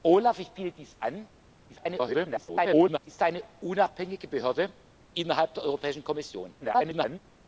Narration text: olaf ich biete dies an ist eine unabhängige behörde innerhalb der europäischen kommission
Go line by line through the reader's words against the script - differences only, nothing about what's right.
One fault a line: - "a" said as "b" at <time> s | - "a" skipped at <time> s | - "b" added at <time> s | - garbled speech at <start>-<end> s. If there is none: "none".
- garbled speech at 1.7-3.0 s
- garbled speech at 6.6-7.2 s